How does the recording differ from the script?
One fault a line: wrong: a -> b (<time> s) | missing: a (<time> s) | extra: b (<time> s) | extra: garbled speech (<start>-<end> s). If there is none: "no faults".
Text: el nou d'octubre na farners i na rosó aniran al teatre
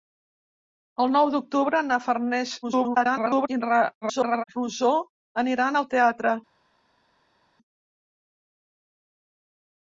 extra: garbled speech (2.6-3.5 s)
extra: garbled speech (4.0-4.4 s)